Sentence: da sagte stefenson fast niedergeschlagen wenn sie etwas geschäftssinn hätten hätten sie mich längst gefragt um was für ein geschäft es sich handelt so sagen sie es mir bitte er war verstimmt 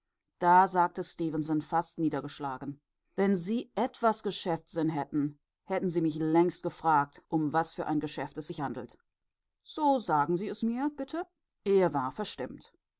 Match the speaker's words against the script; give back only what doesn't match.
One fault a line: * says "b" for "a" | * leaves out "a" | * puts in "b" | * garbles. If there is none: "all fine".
all fine